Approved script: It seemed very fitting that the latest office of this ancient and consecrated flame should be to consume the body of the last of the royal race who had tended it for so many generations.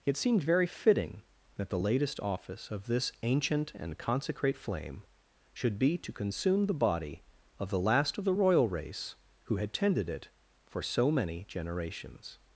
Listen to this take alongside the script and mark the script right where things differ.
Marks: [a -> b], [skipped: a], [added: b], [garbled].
It seemed very fitting that the latest office of this ancient and [consecrated -> consecrate] flame should be to consume the body of the last of the royal race who had tended it for so many generations.